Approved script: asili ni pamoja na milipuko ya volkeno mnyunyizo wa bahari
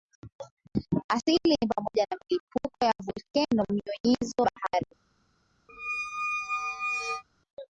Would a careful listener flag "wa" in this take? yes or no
yes